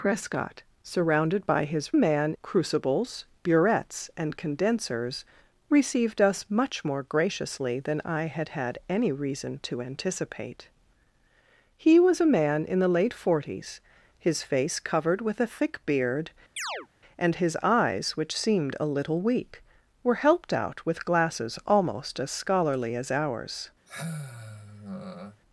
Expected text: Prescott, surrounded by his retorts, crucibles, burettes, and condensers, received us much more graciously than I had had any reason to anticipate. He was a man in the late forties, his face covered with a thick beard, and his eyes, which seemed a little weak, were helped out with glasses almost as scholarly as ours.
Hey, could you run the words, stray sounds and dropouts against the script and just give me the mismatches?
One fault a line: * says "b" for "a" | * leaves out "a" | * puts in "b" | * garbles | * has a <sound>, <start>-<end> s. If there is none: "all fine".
* says "man" for "retorts"
* has a chirp, 16.6-16.9 s
* has a sigh, 23.9-25.4 s